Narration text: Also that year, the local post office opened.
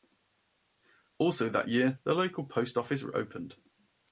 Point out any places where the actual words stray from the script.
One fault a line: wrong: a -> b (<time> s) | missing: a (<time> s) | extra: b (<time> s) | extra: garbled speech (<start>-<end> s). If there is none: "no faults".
no faults